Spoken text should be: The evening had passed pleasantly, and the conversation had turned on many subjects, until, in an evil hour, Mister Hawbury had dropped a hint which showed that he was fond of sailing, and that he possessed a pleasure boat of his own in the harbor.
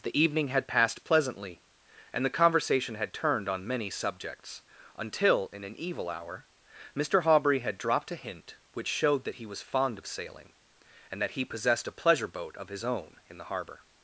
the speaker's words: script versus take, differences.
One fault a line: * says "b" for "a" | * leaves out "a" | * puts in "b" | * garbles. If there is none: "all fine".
all fine